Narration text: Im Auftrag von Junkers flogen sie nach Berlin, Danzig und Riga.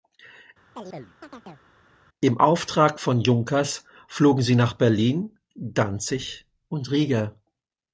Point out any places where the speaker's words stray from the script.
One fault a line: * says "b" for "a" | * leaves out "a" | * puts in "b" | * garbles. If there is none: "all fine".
all fine